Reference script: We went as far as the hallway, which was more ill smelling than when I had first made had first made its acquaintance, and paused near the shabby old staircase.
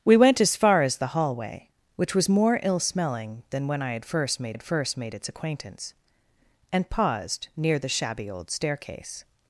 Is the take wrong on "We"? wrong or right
right